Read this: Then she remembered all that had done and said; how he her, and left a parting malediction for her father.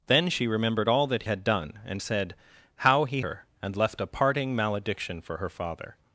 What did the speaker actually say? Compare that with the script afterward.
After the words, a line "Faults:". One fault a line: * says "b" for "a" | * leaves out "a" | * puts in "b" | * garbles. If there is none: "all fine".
Then she remembered all that had done and said; how he her, and left a parting malediction for her father.
Faults:
all fine